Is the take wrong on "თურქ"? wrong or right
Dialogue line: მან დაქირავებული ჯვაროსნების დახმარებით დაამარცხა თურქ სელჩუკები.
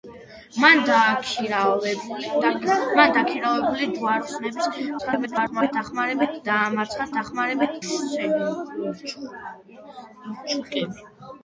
wrong